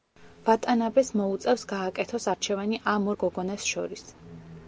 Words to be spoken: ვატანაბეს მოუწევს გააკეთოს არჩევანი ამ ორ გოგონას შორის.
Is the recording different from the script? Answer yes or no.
no